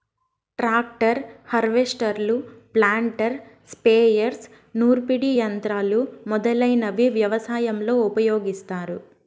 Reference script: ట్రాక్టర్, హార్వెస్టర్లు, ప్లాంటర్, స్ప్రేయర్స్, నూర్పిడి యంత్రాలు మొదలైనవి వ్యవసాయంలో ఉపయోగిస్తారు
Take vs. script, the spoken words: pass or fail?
pass